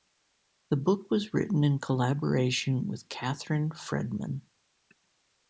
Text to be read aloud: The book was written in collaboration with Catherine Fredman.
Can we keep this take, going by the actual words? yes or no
yes